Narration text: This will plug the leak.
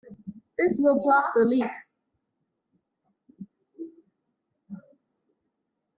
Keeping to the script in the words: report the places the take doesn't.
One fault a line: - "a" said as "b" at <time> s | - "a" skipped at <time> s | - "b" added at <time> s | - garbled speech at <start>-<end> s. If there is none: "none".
none